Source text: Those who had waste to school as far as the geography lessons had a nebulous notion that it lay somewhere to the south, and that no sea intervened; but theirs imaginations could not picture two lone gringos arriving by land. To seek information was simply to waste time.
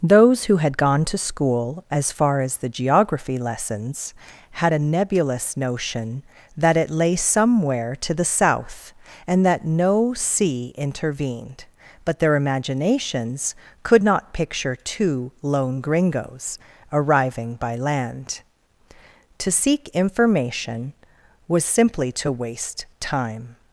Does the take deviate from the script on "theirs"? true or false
true